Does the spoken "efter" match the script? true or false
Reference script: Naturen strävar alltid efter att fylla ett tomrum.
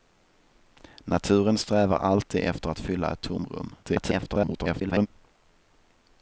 true